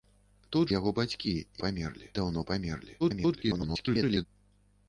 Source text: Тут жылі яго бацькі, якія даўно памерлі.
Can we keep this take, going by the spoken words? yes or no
no